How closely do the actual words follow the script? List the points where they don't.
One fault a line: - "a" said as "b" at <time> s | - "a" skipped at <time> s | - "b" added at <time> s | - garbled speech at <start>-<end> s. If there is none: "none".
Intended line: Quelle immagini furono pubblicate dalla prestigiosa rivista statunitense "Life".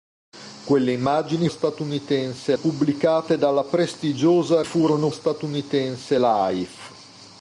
- "furono" said as "statunitense" at 1.5 s
- "rivista" said as "furono" at 4.6 s